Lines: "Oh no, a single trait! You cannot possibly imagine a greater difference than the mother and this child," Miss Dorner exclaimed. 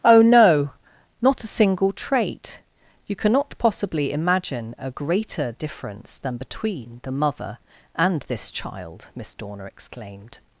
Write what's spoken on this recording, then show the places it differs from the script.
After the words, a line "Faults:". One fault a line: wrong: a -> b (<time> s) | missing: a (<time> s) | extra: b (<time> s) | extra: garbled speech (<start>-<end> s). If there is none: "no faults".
"Oh no, not a single trait! You cannot possibly imagine a greater difference than between the mother and this child," Miss Dorner exclaimed.
Faults:
extra: not (1.2 s)
extra: between (6.4 s)